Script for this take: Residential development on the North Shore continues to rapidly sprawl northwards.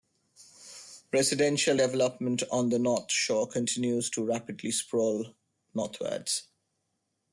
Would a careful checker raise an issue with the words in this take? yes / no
no